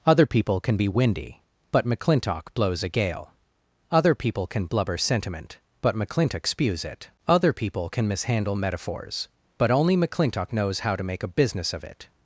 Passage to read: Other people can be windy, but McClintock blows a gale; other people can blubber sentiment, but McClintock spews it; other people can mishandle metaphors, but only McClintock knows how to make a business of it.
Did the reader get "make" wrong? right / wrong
right